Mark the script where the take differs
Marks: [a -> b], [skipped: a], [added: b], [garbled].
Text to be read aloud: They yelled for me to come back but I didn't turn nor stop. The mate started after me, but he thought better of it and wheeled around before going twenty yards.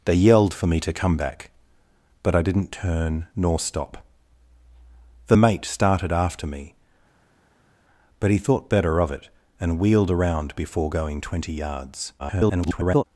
They yelled for me to come back but I didn't turn nor stop. The mate started after me, but he thought better of it and wheeled around before going twenty yards. [garbled]